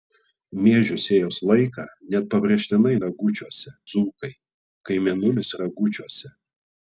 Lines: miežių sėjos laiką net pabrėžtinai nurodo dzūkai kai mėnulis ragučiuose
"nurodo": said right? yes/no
no